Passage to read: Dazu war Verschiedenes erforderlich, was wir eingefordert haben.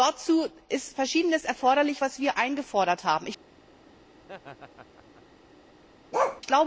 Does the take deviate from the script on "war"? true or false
true